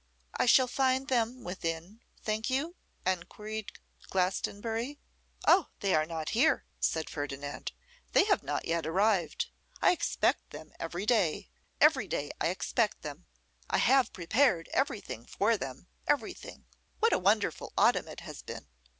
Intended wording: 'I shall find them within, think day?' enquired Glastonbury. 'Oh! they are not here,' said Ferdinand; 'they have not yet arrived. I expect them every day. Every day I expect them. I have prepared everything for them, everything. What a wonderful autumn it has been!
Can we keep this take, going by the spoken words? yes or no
no